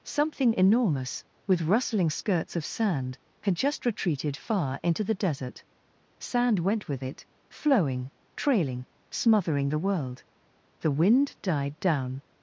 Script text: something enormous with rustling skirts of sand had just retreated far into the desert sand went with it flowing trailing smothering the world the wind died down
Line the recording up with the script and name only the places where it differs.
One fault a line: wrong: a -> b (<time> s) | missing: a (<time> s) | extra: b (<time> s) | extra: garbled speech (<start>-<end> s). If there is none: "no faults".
no faults